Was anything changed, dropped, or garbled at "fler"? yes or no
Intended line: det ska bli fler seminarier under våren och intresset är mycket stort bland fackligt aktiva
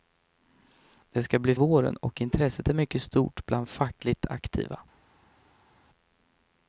yes